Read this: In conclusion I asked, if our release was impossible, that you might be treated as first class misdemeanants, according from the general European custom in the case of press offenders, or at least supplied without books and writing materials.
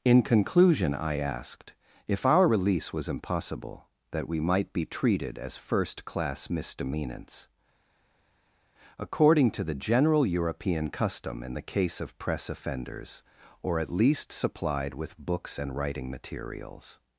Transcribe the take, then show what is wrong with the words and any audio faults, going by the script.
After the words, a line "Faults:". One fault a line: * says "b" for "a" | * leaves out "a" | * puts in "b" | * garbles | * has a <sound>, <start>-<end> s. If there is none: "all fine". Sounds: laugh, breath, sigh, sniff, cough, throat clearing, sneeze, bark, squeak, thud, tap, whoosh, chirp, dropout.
In conclusion I asked, if our release was impossible, that we might be treated as first class misdemeanants, according to the general European custom in the case of press offenders, or at least supplied with books and writing materials.
Faults:
* says "we" for "you"
* says "to" for "from"
* says "with" for "without"